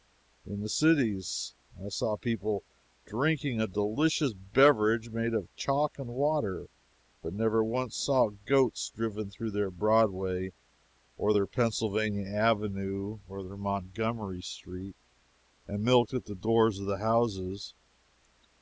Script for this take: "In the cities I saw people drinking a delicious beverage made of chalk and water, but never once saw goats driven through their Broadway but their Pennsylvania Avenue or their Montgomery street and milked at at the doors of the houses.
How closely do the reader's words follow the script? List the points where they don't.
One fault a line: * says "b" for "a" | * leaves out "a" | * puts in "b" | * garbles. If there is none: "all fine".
* says "or" for "but"
* leaves out "at"